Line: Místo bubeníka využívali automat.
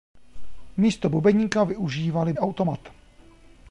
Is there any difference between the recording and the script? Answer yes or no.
no